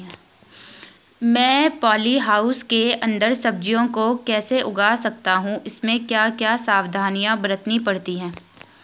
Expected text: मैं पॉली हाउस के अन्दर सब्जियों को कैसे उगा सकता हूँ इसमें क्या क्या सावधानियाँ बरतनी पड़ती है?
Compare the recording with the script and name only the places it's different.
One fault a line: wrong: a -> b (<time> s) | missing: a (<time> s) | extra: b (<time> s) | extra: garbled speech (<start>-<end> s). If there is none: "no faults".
no faults